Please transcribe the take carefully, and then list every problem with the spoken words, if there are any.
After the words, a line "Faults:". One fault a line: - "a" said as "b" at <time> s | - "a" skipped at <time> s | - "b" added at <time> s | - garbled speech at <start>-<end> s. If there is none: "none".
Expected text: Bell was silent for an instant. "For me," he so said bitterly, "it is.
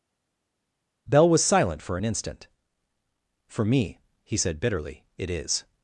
Bell was silent for an instant. "For me," he said bitterly, "it is.
Faults:
- "so" skipped at 4.4 s